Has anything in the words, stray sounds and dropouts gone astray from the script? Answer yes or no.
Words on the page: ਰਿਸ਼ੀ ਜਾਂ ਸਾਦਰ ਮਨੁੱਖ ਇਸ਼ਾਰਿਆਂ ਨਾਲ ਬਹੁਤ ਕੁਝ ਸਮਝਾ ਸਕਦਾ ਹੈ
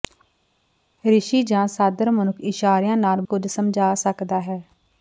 yes